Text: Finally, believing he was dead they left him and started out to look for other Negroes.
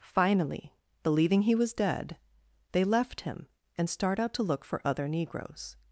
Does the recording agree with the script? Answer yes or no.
no